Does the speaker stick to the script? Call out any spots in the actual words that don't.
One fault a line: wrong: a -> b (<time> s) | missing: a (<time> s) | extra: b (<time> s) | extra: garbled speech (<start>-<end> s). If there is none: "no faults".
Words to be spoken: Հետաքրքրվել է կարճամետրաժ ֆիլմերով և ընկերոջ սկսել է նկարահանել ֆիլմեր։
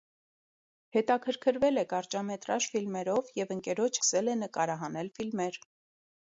no faults